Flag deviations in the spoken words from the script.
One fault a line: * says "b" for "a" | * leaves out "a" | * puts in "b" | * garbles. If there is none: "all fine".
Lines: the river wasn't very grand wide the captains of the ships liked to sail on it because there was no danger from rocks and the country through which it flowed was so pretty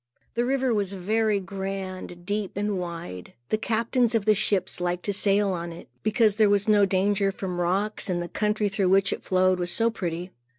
* says "was" for "wasn't"
* puts in "deep and"